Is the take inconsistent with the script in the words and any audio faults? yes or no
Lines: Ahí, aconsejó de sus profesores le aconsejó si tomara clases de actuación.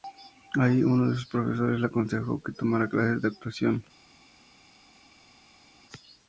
yes